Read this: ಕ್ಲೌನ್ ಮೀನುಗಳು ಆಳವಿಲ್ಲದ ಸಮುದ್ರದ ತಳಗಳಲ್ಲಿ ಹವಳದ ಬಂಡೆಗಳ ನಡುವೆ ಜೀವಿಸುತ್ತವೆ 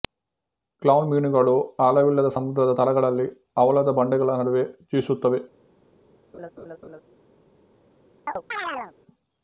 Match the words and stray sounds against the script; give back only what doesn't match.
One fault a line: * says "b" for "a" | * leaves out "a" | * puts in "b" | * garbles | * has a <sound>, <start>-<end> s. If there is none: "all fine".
* has a laugh, 6.3-7.0 s
* has a chirp, 8.3-8.9 s